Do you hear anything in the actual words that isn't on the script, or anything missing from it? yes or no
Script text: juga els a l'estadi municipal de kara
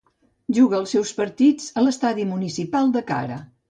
yes